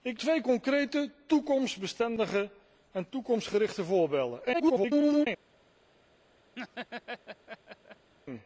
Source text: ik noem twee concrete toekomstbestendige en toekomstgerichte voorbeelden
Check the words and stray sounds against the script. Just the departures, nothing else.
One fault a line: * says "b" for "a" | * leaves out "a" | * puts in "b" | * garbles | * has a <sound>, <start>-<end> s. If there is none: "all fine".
* leaves out "noem"
* garbles
* has a laugh, 6.6-8.1 s